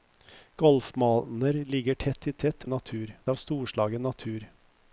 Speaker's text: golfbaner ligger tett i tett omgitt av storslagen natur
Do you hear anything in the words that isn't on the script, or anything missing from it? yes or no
yes